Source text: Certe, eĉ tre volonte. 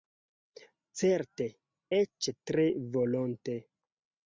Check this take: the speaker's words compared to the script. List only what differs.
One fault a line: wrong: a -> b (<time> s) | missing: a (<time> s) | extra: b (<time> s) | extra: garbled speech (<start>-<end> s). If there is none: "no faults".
no faults